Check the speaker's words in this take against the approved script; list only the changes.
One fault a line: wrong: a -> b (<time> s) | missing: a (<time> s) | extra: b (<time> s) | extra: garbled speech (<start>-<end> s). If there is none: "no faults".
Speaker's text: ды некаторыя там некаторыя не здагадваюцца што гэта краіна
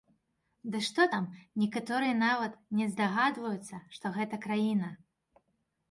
wrong: некаторыя -> што (0.9 s)
extra: нават (2.2 s)